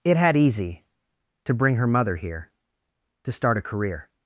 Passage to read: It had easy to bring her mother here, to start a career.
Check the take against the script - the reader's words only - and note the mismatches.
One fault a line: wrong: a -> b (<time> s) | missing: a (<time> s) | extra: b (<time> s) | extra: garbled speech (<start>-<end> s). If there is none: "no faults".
no faults